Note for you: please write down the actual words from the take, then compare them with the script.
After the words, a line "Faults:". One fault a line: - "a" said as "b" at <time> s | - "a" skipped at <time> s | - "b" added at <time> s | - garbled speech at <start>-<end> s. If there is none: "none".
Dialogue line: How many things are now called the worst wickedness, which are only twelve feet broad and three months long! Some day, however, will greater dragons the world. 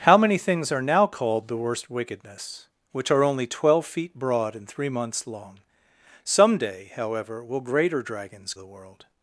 How many things are now called the worst wickedness, which are only twelve feet broad and three months long! Some day, however, will greater dragons the world.
Faults:
none